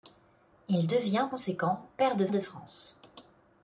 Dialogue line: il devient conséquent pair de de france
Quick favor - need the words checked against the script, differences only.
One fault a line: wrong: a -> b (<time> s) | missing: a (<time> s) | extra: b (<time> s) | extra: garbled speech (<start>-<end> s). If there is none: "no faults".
no faults